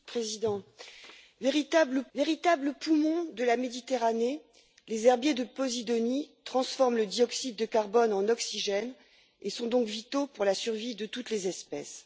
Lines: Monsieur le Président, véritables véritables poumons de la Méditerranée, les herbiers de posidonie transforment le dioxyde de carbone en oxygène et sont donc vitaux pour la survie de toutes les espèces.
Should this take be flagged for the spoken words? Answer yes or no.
no